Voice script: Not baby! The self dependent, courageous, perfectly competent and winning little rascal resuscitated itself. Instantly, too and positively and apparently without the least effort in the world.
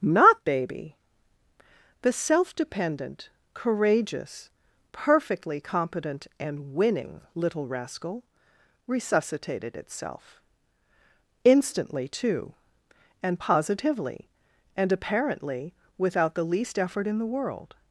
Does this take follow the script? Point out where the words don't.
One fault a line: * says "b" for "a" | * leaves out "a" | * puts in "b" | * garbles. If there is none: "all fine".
all fine